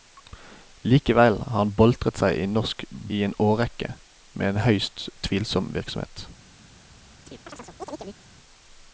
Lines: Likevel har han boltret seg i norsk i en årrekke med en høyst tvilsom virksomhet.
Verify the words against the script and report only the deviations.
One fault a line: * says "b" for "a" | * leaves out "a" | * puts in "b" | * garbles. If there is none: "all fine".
all fine